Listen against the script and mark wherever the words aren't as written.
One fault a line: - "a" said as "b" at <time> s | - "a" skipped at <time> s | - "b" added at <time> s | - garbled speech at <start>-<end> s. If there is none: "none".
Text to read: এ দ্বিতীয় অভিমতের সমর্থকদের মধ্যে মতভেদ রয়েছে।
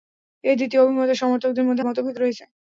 none